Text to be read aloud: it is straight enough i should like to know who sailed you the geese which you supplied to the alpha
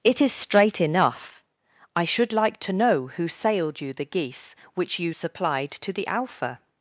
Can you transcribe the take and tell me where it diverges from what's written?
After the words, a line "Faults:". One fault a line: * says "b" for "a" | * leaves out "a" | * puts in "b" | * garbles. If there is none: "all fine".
it is straight enough i should like to know who sailed you the geese which you supplied to the alpha
Faults:
all fine